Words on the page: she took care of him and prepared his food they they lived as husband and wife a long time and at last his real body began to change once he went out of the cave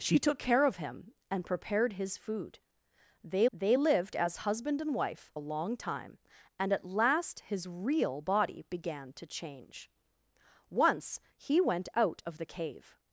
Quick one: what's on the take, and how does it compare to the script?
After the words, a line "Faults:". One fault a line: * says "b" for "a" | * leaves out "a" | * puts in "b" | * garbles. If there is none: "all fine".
she took care of him and prepared his food they they lived as husband and wife a long time and at last his real body began to change once he went out of the cave
Faults:
all fine